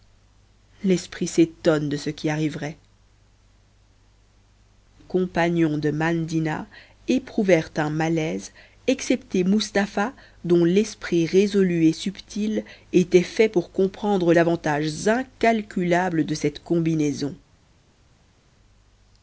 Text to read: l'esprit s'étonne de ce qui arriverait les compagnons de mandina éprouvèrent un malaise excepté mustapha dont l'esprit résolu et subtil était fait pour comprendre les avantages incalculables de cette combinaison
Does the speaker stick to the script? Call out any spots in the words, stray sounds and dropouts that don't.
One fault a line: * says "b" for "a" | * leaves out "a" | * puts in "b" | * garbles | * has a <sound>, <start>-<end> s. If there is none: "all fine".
* leaves out "les"
* leaves out "les"